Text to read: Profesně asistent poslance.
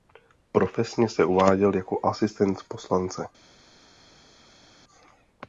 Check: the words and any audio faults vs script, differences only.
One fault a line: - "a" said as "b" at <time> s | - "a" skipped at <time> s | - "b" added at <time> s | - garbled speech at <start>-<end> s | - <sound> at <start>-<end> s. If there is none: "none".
- "se uváděl jako" added at 1.1 s